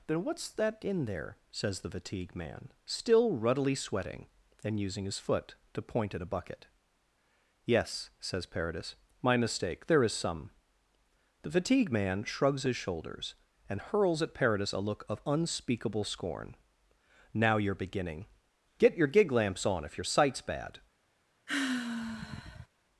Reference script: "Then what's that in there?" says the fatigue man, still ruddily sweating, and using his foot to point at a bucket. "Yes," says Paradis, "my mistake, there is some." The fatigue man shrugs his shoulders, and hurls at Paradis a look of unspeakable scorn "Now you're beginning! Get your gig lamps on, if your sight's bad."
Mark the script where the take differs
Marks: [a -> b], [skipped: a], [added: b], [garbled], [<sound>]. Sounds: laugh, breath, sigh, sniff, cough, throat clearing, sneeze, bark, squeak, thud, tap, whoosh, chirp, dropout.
"Then what's that in there?" says the fatigue man, still ruddily sweating, and using his foot to point at a bucket. "Yes," says Paradis, "my mistake, there is some." The fatigue man shrugs his shoulders, and hurls at Paradis a look of unspeakable scorn "Now you're beginning! Get your gig lamps on, if your sight's bad." [sigh]